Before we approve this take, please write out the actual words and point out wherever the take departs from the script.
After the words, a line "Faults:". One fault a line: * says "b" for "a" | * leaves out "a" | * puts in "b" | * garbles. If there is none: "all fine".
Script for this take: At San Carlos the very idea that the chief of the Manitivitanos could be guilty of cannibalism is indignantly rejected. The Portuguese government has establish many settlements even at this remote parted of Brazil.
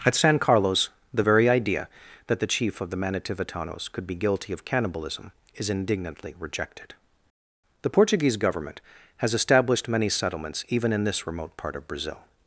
At San Carlos the very idea that the chief of the Manitivitanos could be guilty of cannibalism is indignantly rejected. The Portuguese government has established many settlements even in this remote part of Brazil.
Faults:
* says "established" for "establish"
* says "in" for "at"
* says "part" for "parted"